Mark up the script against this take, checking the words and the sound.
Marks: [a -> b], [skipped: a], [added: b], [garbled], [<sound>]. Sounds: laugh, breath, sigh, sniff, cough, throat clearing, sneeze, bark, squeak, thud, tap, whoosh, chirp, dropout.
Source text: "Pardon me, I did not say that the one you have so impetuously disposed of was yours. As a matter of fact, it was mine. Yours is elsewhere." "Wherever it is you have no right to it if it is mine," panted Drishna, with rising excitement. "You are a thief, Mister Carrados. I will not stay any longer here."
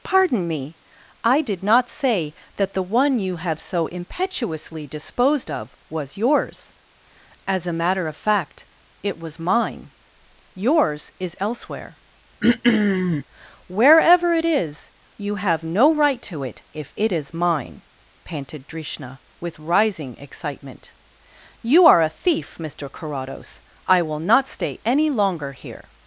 "Pardon me, I did not say that the one you have so impetuously disposed of was yours. As a matter of fact, it was mine. Yours is elsewhere." [throat clearing] "Wherever it is you have no right to it if it is mine," panted Drishna, with rising excitement. "You are a thief, Mister Carrados. I will not stay any longer here."